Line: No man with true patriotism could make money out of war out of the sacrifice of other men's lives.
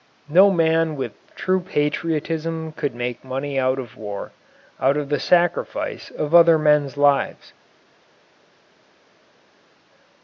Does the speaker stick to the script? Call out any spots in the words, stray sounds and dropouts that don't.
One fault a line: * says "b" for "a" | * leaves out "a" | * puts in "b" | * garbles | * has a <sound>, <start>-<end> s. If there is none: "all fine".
all fine